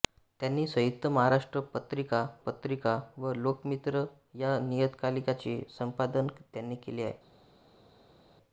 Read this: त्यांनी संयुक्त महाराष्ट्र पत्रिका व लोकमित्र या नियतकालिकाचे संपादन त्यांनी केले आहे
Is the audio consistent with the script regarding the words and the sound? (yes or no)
no